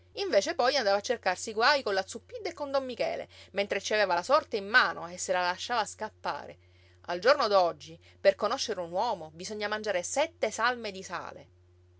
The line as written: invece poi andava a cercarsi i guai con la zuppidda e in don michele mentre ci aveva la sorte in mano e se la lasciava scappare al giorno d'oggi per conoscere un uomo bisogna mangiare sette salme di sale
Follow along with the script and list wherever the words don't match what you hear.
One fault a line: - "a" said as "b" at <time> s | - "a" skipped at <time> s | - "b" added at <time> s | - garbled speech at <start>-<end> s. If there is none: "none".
- "in" said as "con" at 2.5 s